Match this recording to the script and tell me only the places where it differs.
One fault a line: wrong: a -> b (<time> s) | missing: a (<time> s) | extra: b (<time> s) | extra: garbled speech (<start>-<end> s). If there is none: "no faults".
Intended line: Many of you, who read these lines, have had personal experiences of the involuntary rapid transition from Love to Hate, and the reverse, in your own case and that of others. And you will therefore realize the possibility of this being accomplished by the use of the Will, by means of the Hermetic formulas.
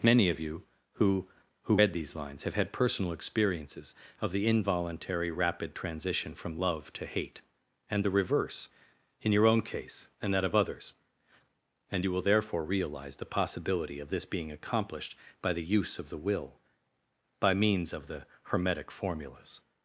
extra: who (1.6 s)